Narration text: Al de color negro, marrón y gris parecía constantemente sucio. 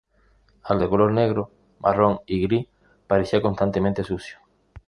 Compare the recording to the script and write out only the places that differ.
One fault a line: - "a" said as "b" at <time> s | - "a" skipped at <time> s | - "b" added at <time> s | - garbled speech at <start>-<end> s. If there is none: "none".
none